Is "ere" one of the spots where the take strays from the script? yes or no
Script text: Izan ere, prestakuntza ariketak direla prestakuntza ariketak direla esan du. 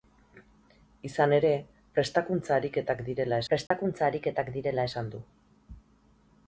no